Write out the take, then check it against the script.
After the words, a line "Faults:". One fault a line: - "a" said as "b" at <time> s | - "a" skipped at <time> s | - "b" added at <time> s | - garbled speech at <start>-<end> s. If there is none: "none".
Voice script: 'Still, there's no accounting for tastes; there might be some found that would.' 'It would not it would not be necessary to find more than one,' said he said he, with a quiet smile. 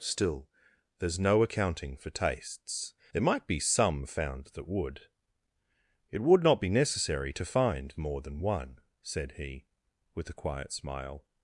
'Still, there's no accounting for tastes; there might be some found that would.' 'It would not be necessary to find more than one,' said he, with a quiet smile.
Faults:
- "it would not" skipped at 6.6 s
- "said he" skipped at 9.7 s